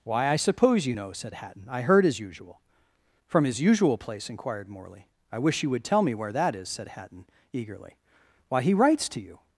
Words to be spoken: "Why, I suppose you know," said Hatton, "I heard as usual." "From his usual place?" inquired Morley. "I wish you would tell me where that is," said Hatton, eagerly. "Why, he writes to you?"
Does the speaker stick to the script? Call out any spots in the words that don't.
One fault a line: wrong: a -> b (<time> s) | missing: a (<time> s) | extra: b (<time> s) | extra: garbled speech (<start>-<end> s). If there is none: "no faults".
no faults